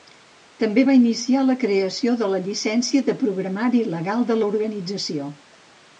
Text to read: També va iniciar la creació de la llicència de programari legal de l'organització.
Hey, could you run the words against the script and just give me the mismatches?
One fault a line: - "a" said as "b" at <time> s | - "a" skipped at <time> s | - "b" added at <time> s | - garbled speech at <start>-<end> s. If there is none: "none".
none